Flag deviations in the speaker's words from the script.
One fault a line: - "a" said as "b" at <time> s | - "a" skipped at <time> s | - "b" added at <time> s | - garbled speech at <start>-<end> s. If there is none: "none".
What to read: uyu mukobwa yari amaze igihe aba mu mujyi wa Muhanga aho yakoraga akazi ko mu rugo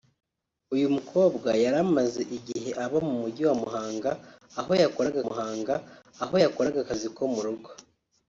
- "Muhanga aho yakoraga" added at 5.3 s